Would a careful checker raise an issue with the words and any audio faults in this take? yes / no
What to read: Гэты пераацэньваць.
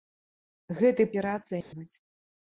yes